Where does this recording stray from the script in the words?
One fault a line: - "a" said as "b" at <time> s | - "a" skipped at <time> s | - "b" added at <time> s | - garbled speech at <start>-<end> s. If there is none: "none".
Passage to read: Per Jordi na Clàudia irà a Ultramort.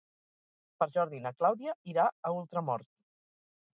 none